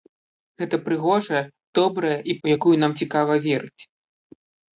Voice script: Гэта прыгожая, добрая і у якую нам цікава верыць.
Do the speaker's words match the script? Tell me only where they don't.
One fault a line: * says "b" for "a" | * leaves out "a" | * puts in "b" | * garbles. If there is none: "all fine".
all fine